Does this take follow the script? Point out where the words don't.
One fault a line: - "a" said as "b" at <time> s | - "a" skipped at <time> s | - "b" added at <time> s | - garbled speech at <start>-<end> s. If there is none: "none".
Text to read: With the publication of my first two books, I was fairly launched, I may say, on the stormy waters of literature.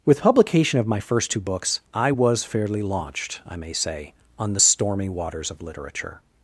- "the" skipped at 0.2 s